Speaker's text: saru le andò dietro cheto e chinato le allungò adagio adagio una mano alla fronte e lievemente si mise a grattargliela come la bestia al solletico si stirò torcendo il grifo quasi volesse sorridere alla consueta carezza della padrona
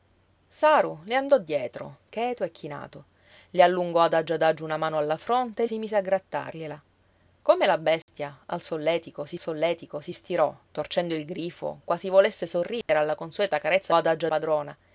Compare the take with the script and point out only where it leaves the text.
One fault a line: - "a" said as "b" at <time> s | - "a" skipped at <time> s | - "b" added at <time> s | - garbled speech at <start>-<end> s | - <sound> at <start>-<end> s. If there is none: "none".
- "lievemente" skipped at 5.7 s
- dropout at 8.0-8.1 s
- "solletico si" added at 9.4 s
- dropout at 12.8-12.9 s
- "della" said as "adagio" at 13.9 s